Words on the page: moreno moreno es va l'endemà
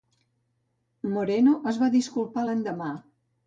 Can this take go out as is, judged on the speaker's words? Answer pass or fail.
fail